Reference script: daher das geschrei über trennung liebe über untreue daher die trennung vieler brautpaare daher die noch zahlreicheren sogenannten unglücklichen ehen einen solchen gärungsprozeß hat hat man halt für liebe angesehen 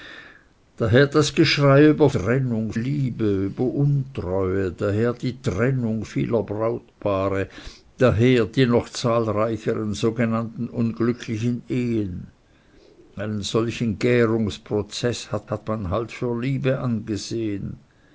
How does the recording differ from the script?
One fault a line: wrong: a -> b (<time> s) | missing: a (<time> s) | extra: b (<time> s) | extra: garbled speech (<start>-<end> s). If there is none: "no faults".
no faults